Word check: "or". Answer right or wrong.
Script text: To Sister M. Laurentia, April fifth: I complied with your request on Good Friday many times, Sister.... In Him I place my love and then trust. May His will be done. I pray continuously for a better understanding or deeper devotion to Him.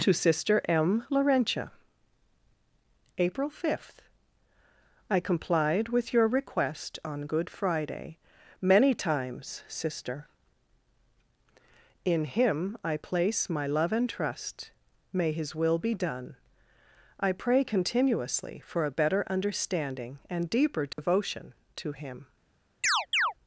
wrong